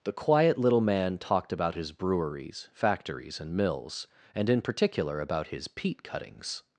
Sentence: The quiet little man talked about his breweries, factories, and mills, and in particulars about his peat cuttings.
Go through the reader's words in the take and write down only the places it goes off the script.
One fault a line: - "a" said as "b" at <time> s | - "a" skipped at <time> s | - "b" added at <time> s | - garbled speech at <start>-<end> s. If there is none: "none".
- "particulars" said as "particular" at 4.6 s